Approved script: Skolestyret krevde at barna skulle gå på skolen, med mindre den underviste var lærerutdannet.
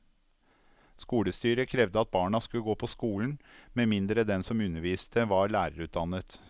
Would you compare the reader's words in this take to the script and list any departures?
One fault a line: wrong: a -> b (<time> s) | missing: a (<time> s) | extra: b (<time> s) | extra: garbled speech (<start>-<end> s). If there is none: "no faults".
extra: som (4.5 s)